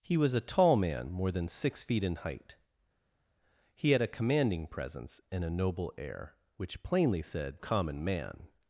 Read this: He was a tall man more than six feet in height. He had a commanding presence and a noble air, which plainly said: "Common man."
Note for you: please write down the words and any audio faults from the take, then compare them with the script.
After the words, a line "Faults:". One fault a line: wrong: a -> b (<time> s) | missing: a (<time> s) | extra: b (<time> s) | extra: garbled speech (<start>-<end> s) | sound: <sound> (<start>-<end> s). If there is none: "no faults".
He was a tall man more than six feet in height. He had a commanding presence and a noble air, which plainly said: "Common man."
Faults:
no faults